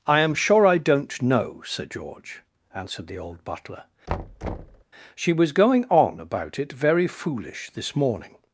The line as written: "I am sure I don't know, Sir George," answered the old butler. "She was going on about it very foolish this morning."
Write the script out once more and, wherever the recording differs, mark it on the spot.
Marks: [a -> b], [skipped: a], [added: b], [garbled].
"I am sure I don't know, Sir George," answered the old butler. "She was going on about it very foolish this morning."